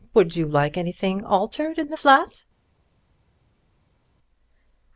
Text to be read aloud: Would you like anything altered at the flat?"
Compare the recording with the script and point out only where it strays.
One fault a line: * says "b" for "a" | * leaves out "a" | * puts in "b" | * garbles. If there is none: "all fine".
* says "in" for "at"